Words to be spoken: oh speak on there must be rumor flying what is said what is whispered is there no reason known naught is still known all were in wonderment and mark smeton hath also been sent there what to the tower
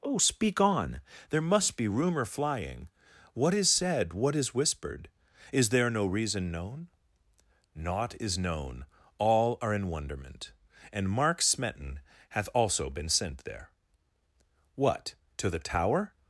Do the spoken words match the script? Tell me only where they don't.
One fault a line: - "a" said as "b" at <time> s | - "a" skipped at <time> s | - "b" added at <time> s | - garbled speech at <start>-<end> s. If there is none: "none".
- "still" skipped at 8.4 s
- "were" said as "are" at 9.6 s